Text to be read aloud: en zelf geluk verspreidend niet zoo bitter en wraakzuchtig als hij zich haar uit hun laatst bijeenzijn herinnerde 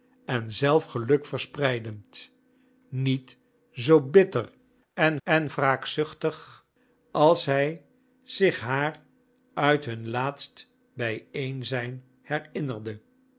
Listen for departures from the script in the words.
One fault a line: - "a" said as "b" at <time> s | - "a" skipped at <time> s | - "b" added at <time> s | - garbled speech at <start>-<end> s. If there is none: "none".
- "en" added at 5.2 s